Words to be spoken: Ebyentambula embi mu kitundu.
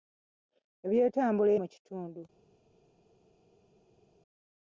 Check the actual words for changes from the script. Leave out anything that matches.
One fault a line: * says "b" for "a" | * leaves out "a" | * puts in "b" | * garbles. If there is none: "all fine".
* leaves out "embi"